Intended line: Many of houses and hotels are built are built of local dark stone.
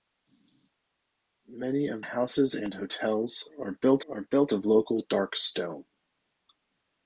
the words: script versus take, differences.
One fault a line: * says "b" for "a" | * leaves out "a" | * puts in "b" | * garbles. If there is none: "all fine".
all fine